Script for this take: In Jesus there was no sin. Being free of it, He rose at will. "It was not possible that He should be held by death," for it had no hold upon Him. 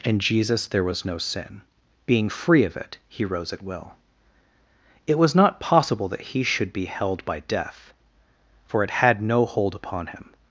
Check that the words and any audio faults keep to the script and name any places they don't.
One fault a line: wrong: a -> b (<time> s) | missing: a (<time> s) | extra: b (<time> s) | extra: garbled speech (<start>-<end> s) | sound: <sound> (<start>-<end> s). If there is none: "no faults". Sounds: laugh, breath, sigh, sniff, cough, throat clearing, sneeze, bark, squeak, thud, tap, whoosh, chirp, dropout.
no faults